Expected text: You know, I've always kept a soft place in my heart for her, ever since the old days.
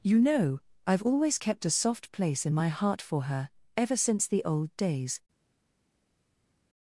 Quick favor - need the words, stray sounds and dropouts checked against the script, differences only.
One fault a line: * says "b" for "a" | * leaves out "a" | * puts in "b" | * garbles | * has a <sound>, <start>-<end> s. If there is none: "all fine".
all fine